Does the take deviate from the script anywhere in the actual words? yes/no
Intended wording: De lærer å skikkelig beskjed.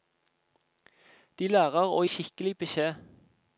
no